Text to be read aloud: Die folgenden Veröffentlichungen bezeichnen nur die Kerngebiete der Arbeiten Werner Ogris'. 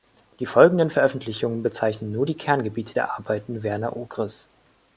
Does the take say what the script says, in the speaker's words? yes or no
yes